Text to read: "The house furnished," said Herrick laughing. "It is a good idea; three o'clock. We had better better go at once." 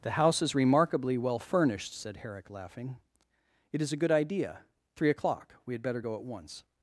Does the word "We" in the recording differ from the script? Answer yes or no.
no